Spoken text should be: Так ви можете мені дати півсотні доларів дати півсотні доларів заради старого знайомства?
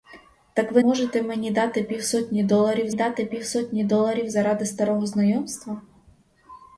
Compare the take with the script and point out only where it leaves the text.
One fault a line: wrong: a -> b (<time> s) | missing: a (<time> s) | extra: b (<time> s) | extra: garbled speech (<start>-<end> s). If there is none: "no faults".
no faults